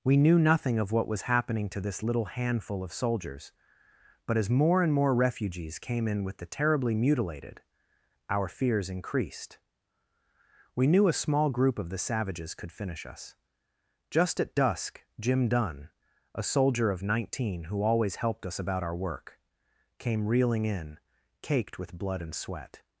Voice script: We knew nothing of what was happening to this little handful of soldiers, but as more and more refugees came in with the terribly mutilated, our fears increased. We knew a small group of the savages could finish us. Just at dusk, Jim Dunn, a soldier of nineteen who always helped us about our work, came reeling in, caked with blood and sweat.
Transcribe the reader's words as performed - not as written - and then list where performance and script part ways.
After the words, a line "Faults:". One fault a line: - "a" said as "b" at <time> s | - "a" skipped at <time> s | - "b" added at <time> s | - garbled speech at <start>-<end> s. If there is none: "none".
We knew nothing of what was happening to this little handful of soldiers, but as more and more refugees came in with the terribly mutilated, our fears increased. We knew a small group of the savages could finish us. Just at dusk, Jim Dunn, a soldier of nineteen who always helped us about our work, came reeling in, caked with blood and sweat.
Faults:
none